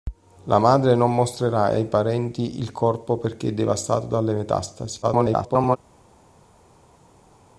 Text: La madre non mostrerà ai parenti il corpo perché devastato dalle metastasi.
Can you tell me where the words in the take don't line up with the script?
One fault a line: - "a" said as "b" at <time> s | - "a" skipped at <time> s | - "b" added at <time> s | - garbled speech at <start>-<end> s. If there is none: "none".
- garbled speech at 5.0-5.8 s